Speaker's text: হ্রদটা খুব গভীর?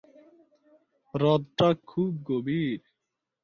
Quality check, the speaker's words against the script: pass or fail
pass